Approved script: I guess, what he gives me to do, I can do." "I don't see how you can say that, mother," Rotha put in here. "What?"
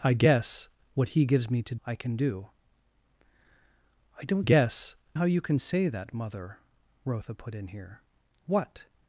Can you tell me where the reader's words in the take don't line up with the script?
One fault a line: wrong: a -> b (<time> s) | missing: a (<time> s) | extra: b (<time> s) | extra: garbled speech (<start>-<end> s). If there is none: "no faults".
missing: do (1.8 s)
wrong: see -> guess (4.4 s)